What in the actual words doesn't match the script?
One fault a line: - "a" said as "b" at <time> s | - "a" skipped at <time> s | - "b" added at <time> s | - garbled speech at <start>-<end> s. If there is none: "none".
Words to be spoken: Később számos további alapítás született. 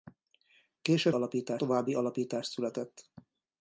- "számos" said as "alapítás" at 1.1 s